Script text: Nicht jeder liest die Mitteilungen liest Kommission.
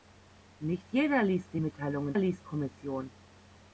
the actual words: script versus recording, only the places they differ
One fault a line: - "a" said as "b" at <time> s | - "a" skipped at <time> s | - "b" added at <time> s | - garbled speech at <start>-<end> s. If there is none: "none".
none